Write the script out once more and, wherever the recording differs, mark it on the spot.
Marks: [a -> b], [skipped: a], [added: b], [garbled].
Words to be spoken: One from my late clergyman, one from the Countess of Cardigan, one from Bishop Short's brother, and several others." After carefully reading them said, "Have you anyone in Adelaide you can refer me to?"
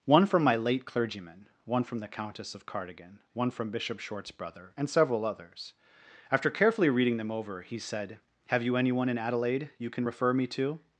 One from my late clergyman, one from the Countess of Cardigan, one from Bishop Short's brother, and several others." After carefully reading them [added: over he] said, "Have you anyone in Adelaide you can refer me to?"